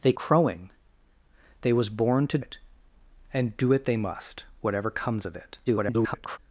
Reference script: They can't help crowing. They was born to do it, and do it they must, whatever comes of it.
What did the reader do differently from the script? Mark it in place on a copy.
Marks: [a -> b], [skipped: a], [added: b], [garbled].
They [skipped: can't help] crowing. They was born to [skipped: do] it, and do it they must, whatever comes of it. [garbled]